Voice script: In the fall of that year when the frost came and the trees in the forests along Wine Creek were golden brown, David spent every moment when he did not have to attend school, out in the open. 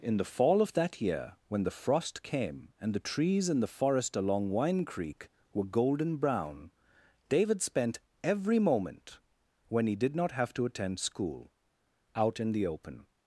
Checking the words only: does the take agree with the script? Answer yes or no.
no